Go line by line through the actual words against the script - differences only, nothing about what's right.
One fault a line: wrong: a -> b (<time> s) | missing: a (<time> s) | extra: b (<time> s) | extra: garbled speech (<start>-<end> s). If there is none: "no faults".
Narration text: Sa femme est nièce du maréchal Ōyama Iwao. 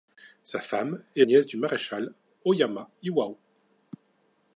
no faults